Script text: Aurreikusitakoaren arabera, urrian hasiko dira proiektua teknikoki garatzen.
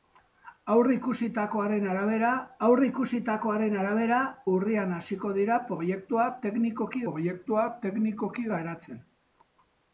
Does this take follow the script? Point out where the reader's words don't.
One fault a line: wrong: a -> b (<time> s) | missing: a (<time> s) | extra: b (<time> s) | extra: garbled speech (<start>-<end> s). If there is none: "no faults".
extra: aurreikusitakoaren arabera (2.7 s)
extra: proiektua teknikoki (7.1 s)